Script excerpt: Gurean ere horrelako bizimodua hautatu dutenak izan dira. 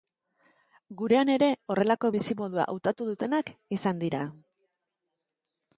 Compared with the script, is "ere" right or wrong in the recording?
right